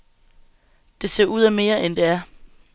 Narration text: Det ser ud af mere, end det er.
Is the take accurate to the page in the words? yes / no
yes